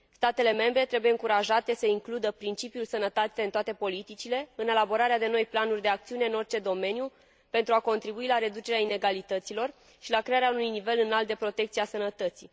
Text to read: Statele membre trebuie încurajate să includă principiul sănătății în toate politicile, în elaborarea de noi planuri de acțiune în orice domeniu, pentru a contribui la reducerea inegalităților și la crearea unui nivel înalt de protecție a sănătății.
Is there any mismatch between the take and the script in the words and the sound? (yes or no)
no